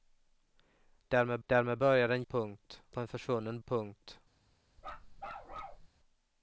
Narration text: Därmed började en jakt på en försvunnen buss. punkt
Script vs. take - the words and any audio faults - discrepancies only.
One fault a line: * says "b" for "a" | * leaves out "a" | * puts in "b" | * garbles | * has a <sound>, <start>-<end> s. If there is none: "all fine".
* puts in "därmed"
* says "punkt" for "jakt"
* leaves out "buss"
* has a bark, 4.8-5.9 s